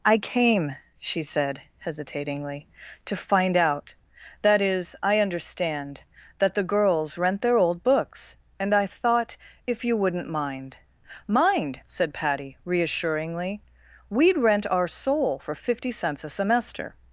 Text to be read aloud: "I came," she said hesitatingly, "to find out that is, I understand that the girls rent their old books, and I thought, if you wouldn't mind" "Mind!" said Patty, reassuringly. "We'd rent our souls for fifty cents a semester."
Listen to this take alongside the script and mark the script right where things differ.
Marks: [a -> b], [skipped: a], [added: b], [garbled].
"I came," she said hesitatingly, "to find out that is, I understand that the girls rent their old books, and I thought, if you wouldn't mind" "Mind!" said Patty, reassuringly. "We'd rent our [souls -> soul] for fifty cents a semester."